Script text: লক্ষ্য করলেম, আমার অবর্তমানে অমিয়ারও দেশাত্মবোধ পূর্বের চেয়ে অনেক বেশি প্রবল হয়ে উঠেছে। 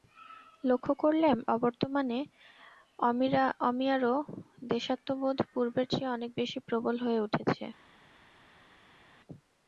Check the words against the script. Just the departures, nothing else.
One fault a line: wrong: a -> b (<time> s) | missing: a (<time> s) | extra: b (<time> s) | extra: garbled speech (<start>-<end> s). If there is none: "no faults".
missing: আমার (1.4 s)